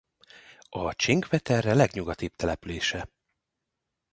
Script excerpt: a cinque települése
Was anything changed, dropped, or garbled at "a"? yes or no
no